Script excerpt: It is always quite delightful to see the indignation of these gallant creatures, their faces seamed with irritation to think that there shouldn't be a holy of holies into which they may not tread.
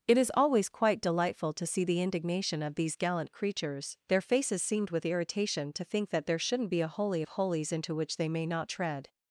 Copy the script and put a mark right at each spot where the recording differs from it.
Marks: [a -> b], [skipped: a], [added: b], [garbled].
It is always quite delightful to see the indignation of these gallant creatures, their faces seamed with irritation to think that there shouldn't be a holy of holies into which they may not tread.